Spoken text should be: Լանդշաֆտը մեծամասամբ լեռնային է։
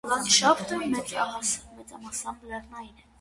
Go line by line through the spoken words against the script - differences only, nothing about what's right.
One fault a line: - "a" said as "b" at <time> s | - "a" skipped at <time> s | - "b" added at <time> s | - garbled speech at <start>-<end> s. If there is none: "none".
none